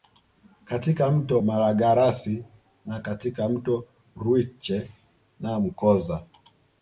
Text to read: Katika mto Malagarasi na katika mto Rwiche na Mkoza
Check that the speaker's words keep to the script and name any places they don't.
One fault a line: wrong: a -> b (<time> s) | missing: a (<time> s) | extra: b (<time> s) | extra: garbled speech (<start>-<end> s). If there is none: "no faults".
no faults